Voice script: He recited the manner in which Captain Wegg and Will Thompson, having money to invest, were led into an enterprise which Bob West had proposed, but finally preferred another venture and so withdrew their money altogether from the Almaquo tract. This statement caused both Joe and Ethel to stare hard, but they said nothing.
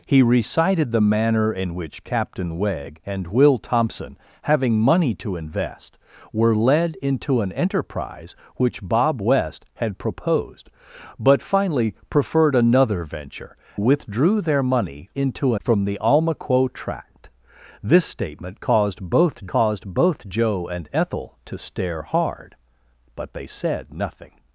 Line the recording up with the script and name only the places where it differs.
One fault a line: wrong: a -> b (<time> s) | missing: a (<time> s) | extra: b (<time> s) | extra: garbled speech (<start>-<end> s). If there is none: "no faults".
missing: and so (13.6 s)
wrong: altogether -> into (15.1 s)
extra: caused both (19.5 s)